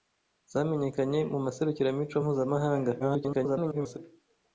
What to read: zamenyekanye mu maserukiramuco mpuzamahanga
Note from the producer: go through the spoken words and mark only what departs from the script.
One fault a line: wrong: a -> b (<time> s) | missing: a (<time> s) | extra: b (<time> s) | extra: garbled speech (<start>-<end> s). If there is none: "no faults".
extra: garbled speech (3.0-4.0 s)